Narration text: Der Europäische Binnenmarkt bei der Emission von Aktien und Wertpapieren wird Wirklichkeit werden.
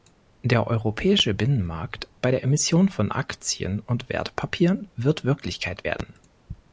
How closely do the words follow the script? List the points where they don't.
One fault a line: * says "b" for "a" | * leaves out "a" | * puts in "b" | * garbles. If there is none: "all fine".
all fine